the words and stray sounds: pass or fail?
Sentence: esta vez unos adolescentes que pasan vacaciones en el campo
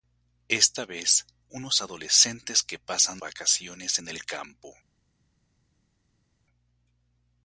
pass